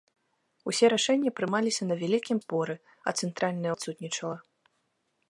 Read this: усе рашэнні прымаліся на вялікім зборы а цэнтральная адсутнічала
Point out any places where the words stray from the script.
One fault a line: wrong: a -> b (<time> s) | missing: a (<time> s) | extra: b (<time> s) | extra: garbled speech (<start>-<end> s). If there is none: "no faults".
no faults